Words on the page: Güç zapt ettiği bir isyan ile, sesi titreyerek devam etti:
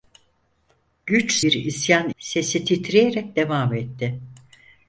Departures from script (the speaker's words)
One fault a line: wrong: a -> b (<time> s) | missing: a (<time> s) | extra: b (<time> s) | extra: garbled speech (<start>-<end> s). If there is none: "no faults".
missing: zapt ettiği (1.4 s)
missing: ile (2.1 s)